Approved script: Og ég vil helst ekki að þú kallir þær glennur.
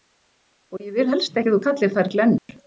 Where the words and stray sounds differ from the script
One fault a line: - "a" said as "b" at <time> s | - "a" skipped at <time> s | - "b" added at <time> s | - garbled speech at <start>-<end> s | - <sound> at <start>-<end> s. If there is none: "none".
- dropout at 2.4-2.5 s